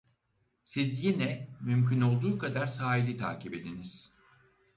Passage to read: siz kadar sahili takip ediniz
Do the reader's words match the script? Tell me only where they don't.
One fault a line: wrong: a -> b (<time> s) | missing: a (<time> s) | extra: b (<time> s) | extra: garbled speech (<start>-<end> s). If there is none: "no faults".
extra: yine mümkün olduğu (1.0 s)